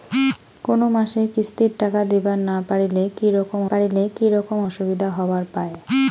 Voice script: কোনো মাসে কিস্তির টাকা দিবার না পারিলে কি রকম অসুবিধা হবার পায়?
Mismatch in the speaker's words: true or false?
true